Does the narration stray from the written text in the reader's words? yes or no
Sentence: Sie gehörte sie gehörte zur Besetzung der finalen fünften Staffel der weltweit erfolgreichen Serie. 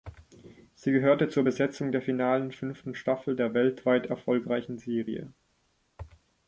yes